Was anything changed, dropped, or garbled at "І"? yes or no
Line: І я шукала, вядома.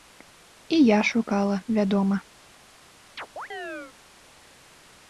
no